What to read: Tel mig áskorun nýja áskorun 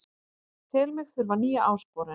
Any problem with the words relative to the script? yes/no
yes